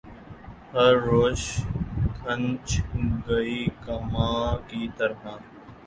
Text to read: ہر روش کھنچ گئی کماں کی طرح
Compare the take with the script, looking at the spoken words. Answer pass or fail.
pass